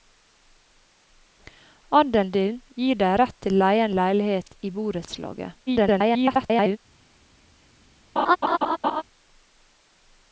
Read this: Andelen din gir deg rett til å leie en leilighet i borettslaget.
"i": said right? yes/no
yes